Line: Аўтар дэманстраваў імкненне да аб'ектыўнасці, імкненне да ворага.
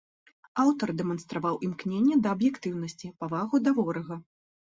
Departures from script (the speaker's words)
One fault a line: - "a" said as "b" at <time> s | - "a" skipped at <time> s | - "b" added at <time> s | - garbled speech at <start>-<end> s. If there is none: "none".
- "імкненне" said as "павагу" at 3.2 s